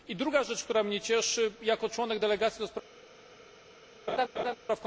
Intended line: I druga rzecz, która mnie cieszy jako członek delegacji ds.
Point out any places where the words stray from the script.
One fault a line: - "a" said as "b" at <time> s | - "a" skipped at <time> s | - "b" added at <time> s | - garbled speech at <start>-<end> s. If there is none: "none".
none